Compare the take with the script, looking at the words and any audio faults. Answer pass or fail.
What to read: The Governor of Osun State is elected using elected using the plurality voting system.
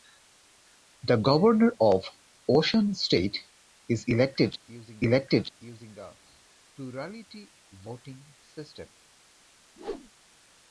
fail